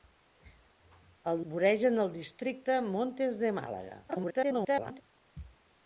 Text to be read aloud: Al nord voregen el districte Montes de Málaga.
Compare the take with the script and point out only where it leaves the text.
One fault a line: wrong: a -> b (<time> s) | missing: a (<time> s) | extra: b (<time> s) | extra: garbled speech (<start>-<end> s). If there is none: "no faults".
missing: nord (1.4 s)
extra: garbled speech (4.1-5.0 s)